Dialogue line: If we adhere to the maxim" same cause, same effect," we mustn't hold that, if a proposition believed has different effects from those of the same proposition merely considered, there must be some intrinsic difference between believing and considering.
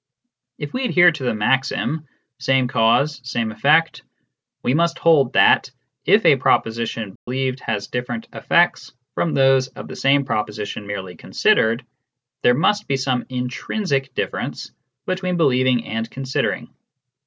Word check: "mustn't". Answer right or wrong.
wrong